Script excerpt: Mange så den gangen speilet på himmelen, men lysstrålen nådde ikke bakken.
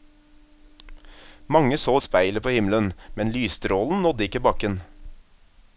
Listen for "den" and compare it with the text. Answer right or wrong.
wrong